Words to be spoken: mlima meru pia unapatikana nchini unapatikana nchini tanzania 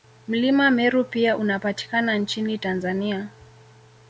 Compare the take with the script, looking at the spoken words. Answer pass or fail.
fail